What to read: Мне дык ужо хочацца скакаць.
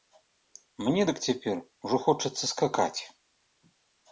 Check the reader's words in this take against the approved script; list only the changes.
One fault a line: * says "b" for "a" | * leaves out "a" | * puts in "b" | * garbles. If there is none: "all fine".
* puts in "цяпер"